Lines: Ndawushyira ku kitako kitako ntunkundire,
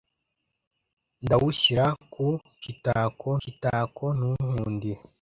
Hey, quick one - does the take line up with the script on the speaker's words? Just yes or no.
yes